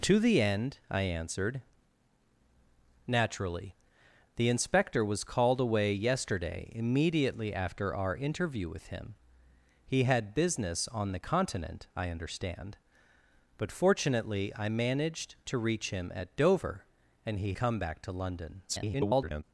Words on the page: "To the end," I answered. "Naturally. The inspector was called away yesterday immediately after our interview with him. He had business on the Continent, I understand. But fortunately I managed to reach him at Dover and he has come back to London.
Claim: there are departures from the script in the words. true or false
true